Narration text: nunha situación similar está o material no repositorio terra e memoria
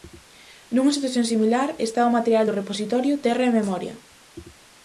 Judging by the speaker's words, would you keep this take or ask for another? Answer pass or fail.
fail